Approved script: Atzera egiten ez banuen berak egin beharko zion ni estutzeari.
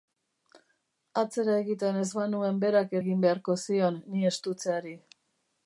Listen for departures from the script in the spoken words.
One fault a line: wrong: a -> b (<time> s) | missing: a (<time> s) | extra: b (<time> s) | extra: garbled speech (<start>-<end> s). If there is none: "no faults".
no faults